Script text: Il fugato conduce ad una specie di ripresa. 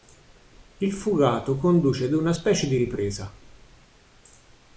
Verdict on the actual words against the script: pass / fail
pass